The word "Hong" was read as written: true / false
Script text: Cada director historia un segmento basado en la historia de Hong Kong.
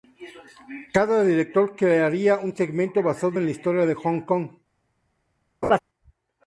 true